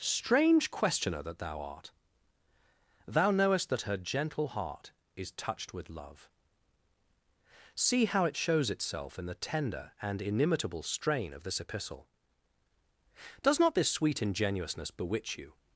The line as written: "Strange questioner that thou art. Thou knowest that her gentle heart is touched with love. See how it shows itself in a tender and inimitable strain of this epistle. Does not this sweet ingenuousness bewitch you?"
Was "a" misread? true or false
true